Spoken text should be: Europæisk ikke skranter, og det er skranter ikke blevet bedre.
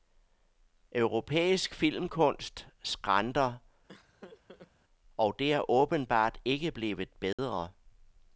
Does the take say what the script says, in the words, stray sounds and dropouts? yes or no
no